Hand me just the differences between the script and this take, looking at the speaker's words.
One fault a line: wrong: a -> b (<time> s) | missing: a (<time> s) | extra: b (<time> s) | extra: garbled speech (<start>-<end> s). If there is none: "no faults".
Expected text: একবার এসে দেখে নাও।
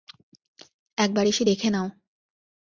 no faults